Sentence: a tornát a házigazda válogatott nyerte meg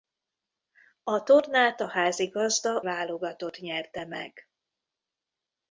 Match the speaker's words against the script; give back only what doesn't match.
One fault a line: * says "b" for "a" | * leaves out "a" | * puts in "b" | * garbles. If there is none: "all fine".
all fine